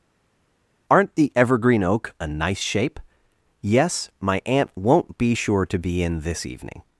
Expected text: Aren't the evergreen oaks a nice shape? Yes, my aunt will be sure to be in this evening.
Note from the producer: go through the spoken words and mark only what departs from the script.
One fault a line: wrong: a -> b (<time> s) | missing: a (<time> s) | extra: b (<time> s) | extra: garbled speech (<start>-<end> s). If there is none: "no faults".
wrong: oaks -> oak (1.8 s)
wrong: will -> won't (4.7 s)